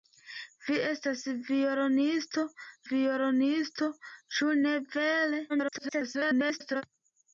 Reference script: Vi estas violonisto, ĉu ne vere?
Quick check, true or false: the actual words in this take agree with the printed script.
false